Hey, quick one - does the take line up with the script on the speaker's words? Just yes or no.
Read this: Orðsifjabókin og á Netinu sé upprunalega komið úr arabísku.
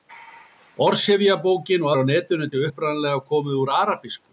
yes